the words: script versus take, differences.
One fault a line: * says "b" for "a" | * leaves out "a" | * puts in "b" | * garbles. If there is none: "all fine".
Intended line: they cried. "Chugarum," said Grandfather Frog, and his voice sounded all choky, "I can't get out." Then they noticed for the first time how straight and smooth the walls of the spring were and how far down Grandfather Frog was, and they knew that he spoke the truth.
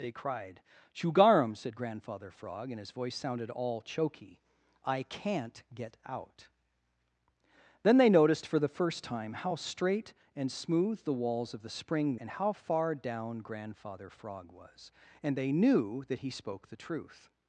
* leaves out "were"